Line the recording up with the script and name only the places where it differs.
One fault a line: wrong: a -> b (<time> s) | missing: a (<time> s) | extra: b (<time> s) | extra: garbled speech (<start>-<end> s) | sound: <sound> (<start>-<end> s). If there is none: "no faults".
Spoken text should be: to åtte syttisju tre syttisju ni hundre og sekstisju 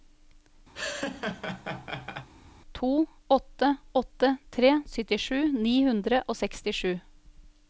sound: laugh (0.7-2.3 s)
wrong: syttisju -> åtte (3.9 s)